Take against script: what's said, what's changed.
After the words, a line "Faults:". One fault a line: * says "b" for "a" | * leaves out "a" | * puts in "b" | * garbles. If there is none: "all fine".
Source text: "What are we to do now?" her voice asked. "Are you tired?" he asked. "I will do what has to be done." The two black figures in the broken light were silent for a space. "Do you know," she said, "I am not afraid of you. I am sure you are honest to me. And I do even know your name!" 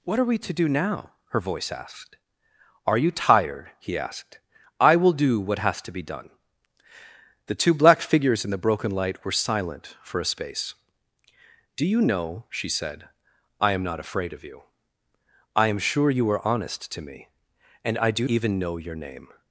"What are we to do now?" her voice asked. "Are you tired?" he asked. "I will do what has to be done." The two black figures in the broken light were silent for a space. "Do you know," she said, "I am not afraid of you. I am sure you are honest to me. And I do even know your name!"
Faults:
all fine